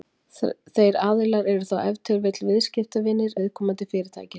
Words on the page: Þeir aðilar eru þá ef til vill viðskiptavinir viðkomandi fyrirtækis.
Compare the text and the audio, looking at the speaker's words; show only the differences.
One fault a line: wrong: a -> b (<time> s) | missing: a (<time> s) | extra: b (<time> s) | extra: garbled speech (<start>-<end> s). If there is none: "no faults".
no faults